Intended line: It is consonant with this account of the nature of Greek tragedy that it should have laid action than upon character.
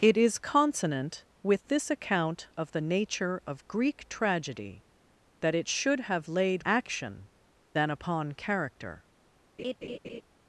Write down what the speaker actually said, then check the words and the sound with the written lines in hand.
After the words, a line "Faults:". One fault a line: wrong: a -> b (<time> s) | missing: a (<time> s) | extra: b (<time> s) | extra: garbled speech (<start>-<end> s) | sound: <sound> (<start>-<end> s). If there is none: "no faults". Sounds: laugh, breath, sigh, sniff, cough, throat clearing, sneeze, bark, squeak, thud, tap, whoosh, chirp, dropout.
It is consonant with this account of the nature of Greek tragedy that it should have laid action than upon character.
Faults:
sound: laugh (9.6-10.2 s)